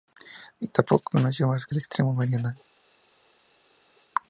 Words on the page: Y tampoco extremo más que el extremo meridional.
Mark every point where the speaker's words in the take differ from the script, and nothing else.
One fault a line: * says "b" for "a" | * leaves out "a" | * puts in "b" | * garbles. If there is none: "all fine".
* says "conoció" for "extremo"